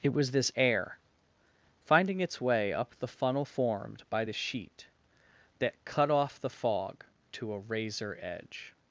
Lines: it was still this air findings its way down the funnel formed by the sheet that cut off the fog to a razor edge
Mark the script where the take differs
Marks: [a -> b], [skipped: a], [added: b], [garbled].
it was [skipped: still] this air [findings -> finding] its way [down -> up] the funnel formed by the sheet that cut off the fog to a razor edge